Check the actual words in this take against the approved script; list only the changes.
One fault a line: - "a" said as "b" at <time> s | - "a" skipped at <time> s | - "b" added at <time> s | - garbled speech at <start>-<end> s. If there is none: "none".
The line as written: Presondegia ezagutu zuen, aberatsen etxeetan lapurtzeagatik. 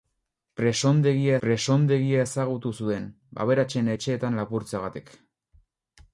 - "presondegia" added at 1.4 s